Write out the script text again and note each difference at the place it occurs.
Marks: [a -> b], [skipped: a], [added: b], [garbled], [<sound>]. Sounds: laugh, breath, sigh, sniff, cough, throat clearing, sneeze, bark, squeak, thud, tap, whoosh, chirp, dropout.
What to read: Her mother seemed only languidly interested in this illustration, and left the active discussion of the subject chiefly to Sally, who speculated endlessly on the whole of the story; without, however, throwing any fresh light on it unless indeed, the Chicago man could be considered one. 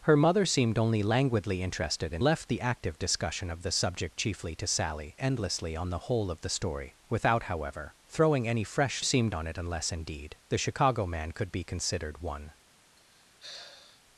Her mother seemed only languidly interested in [skipped: this illustration, and] left the active discussion of the subject chiefly to Sally, [skipped: who speculated] endlessly on the whole of the story; without, however, throwing any fresh [light -> seemed] on it unless indeed, the Chicago man could be considered one. [sigh]